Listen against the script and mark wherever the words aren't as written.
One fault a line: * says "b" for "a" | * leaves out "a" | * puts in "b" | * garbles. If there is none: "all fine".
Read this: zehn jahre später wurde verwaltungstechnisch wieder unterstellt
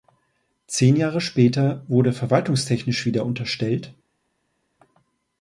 all fine